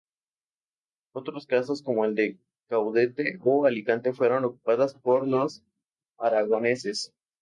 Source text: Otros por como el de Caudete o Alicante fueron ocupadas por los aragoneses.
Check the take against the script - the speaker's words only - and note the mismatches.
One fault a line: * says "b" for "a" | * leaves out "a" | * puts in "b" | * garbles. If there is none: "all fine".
* says "casos" for "por"